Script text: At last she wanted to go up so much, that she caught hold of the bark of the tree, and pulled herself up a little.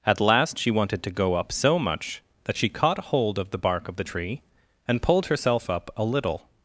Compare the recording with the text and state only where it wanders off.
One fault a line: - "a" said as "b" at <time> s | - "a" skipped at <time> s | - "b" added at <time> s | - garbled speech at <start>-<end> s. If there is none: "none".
none